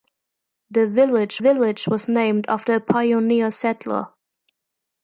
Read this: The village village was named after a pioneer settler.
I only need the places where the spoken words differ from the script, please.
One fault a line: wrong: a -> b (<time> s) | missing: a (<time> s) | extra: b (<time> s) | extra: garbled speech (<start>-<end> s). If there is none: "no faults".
no faults